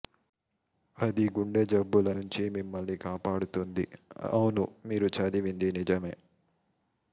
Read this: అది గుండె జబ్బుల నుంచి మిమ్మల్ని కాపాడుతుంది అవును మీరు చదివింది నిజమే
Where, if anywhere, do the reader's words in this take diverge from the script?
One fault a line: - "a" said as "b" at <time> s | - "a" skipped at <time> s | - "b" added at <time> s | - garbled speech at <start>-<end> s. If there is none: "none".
none